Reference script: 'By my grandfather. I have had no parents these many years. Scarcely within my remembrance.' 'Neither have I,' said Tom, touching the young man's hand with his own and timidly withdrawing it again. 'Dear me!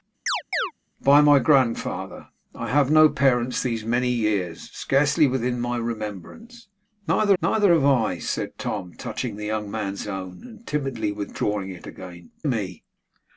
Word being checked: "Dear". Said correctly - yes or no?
no